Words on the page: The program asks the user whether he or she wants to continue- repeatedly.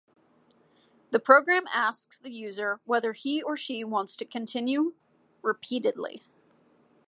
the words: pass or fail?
pass